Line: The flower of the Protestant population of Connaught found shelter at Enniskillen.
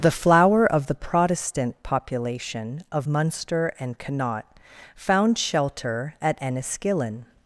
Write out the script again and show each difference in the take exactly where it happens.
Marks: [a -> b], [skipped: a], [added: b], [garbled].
The flower of the Protestant population of [added: Munster and] Connaught found shelter at Enniskillen.